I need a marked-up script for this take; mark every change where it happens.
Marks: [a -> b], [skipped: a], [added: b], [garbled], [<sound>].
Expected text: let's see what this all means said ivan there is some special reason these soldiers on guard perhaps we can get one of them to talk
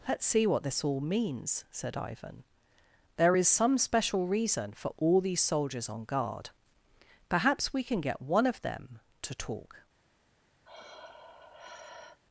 let's see what this all means said ivan there is some special reason [added: for all] these soldiers on guard perhaps we can get one of them to talk [sigh]